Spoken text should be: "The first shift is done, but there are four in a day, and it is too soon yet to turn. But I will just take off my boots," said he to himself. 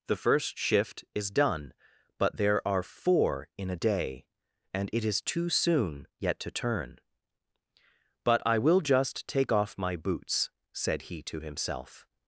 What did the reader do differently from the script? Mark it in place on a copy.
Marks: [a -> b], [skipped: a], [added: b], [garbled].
"The first shift is done, but there are four in a day, and it is too soon yet to turn. But I will just take off my boots," said he to himself.